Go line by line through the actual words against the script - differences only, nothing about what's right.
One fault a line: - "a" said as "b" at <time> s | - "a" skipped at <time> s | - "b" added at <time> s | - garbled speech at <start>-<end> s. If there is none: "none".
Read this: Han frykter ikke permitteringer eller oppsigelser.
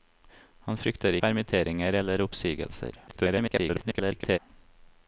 - "ikke" skipped at 1.2 s
- garbled speech at 3.1-4.4 s